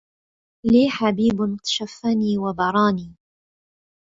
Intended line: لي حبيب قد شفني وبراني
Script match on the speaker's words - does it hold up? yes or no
no